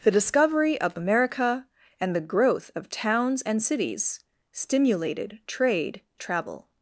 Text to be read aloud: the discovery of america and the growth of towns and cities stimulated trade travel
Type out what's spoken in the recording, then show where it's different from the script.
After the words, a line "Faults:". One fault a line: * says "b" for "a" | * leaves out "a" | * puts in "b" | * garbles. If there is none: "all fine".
the discovery of america and the growth of towns and cities stimulated trade travel
Faults:
all fine